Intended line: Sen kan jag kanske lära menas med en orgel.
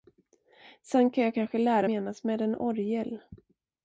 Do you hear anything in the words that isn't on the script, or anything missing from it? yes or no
no